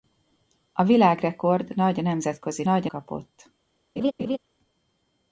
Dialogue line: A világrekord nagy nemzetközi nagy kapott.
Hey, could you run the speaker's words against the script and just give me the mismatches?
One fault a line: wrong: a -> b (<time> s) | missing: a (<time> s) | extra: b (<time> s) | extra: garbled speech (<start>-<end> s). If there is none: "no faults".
no faults